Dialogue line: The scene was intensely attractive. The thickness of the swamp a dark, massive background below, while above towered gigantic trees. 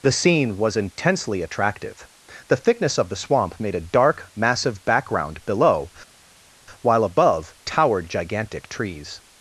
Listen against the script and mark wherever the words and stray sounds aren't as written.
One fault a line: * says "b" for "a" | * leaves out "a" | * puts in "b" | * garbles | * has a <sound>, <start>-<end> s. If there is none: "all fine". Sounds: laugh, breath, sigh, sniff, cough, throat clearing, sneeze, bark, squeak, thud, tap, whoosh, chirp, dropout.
* puts in "made"